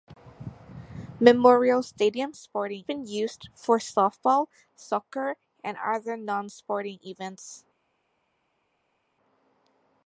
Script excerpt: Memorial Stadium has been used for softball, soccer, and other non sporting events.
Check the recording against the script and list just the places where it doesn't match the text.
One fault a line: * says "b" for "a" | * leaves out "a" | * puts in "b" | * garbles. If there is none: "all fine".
* says "sporting" for "has"